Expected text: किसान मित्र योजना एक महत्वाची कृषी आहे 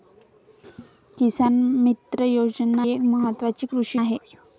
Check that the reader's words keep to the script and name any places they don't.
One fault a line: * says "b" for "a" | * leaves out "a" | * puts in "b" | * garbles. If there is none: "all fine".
all fine